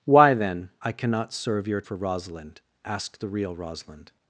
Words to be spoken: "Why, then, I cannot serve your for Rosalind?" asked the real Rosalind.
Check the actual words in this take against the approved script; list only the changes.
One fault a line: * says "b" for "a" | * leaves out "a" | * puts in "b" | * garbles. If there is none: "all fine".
all fine